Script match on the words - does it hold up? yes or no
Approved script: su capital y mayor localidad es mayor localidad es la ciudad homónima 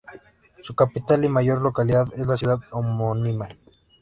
no